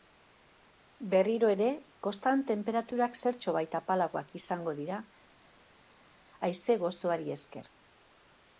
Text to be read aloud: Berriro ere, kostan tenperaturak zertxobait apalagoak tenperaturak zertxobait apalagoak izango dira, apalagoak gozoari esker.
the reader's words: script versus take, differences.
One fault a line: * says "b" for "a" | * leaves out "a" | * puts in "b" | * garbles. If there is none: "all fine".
* leaves out "tenperaturak zertxobait apalagoak"
* says "haize" for "apalagoak"